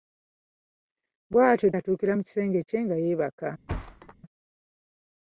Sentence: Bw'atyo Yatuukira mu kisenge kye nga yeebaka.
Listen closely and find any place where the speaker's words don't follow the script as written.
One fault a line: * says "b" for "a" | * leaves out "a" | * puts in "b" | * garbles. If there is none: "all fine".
all fine